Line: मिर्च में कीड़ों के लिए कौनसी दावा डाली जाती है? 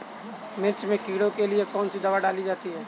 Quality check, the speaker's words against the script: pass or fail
pass